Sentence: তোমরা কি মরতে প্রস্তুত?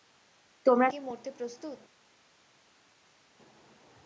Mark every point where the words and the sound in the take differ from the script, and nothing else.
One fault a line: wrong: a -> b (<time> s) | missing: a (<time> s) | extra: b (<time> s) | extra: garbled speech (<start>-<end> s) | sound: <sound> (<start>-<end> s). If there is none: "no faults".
no faults